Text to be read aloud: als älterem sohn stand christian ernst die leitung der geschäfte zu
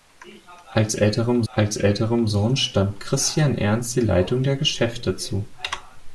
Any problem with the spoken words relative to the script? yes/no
yes